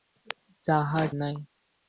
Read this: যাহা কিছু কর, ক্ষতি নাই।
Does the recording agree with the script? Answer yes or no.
no